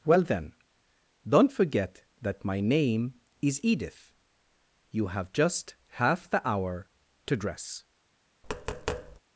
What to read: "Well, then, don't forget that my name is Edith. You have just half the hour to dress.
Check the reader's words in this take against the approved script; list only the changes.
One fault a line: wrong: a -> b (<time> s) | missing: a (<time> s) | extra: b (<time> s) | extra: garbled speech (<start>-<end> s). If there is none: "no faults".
no faults